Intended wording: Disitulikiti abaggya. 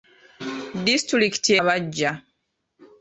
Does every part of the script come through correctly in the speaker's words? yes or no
yes